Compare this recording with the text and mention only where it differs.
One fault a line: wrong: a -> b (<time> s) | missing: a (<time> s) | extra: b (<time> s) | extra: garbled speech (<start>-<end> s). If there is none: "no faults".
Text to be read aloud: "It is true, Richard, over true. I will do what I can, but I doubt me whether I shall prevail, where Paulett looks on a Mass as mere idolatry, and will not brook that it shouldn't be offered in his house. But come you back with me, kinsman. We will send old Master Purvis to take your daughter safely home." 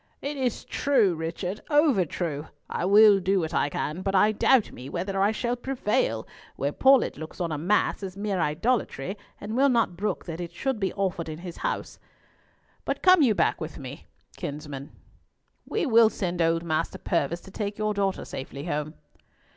wrong: shouldn't -> should (10.5 s)